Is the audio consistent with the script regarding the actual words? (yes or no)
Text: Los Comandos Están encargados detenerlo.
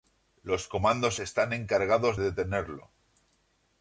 yes